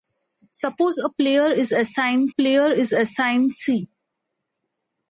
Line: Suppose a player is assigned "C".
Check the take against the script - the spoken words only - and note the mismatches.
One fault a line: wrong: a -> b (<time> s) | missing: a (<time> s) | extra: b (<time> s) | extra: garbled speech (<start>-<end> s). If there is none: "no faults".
extra: player is assigned (2.3 s)